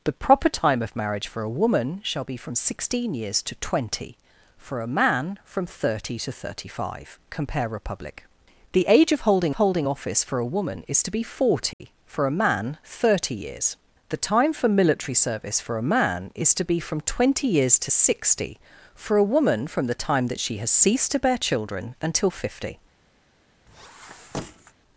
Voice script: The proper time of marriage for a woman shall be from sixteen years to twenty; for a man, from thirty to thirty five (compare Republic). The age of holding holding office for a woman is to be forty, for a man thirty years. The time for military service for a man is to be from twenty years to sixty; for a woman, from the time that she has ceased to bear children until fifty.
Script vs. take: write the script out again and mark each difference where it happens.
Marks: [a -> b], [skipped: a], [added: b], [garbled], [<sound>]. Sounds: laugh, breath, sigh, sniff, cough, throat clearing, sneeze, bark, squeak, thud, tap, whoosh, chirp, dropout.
The proper time of marriage for a woman shall be from sixteen years to twenty; for a man, from thirty to thirty five (compare Republic). The age of holding holding office for a woman is to be forty, [dropout] for a man thirty years. The time for military service for a man is to be from twenty years to sixty; for a woman, from the time that she has ceased to bear children until fifty. [squeak]